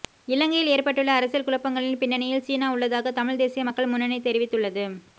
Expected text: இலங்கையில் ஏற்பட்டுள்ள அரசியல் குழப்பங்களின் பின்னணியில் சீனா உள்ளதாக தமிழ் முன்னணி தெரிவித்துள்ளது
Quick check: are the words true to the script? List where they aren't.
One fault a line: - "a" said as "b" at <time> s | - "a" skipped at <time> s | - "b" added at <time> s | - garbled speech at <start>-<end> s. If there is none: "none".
- "தேசிய மக்கள்" added at 3.4 s